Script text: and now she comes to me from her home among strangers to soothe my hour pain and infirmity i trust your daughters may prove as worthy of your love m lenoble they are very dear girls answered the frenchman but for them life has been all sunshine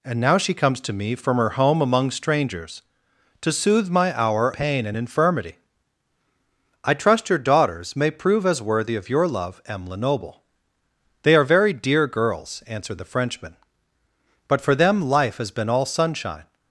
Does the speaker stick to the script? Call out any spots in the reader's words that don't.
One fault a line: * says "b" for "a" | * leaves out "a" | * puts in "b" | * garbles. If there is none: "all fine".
all fine